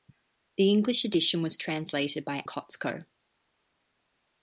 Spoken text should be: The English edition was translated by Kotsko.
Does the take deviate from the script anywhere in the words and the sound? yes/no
no